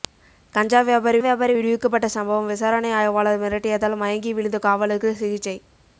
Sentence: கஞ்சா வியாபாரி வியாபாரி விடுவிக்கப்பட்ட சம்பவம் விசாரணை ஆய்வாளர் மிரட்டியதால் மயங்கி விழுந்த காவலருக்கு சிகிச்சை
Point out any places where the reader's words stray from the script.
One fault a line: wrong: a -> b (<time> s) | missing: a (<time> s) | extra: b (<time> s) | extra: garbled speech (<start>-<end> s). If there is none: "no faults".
no faults